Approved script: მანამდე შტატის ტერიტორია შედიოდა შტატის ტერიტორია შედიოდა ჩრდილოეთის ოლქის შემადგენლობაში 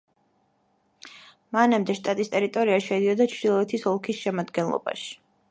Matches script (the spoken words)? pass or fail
fail